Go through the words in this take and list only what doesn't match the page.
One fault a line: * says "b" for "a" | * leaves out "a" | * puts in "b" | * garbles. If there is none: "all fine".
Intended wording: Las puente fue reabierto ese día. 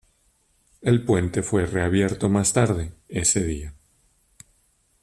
* says "El" for "Las"
* puts in "más tarde"